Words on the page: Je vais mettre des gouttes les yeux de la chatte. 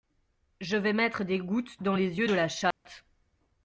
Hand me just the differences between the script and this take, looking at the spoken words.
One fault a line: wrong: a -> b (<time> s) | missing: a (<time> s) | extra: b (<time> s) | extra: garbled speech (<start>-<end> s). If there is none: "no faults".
extra: dans (1.8 s)